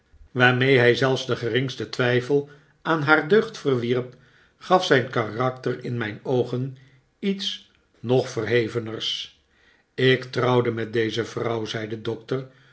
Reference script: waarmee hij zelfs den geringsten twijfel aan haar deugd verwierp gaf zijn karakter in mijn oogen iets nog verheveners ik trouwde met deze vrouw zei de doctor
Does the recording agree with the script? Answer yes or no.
yes